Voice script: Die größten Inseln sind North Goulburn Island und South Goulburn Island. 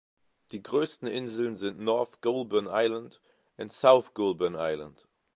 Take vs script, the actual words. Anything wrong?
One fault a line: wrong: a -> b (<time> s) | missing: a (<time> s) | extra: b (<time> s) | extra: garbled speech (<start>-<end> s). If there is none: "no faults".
no faults